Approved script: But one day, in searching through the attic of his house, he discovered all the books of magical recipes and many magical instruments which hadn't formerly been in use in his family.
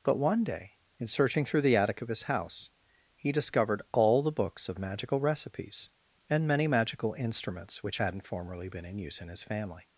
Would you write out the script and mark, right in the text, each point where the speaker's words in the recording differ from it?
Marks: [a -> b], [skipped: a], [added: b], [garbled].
But one day, in searching through the attic of his house, he discovered all the books of magical recipes and many magical instruments which hadn't formerly been in use in his family.